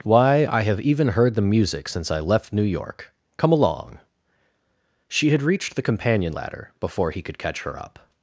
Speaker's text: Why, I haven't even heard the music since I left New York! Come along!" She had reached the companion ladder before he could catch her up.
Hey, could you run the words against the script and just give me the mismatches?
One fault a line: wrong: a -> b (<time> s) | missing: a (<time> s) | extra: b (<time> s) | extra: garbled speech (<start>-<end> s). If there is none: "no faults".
wrong: haven't -> have (0.6 s)